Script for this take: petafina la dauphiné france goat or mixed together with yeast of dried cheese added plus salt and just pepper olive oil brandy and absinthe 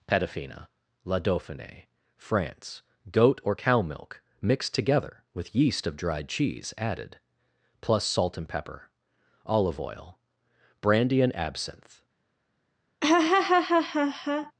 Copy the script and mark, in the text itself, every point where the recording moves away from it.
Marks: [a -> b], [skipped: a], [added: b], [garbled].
petafina la dauphiné france goat or [added: cow milk] mixed together with yeast of dried cheese added plus salt and [skipped: just] pepper olive oil brandy and absinthe